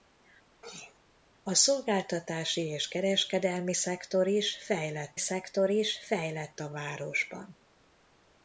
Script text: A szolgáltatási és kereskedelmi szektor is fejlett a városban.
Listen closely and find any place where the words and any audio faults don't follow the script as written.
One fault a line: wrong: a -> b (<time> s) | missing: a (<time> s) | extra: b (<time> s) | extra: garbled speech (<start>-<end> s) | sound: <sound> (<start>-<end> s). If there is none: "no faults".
sound: sneeze (0.6-1.0 s)
extra: szektor is fejlett (5.2 s)